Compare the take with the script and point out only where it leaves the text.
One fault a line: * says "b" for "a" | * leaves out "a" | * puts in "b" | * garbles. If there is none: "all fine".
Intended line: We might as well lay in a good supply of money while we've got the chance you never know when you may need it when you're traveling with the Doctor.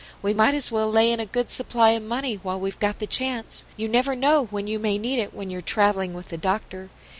all fine